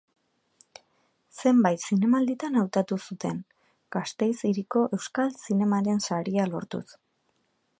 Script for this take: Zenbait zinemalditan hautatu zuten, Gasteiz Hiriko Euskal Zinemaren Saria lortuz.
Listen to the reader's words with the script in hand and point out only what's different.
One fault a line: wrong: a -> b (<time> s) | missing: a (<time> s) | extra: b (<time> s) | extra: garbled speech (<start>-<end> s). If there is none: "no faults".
no faults